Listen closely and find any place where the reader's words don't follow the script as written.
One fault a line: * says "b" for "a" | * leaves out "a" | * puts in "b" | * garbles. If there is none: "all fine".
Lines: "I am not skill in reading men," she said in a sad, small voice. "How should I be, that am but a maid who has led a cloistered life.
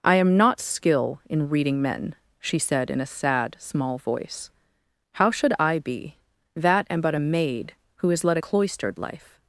all fine